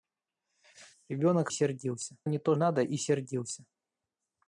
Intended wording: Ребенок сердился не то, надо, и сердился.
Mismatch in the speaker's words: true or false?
false